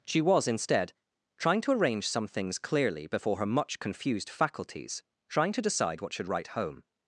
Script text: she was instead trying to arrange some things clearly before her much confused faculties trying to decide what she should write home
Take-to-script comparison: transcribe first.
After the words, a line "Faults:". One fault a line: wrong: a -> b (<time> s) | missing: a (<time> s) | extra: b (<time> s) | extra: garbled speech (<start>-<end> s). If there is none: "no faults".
she was instead trying to arrange some things clearly before her much confused faculties trying to decide what should write home
Faults:
missing: she (6.1 s)